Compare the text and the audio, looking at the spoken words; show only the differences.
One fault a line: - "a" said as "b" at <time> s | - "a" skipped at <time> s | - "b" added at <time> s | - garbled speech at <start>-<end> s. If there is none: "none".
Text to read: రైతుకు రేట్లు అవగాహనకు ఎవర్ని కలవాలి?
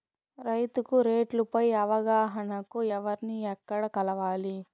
- "పై" added at 1.5 s
- "ఎక్కడ" added at 3.5 s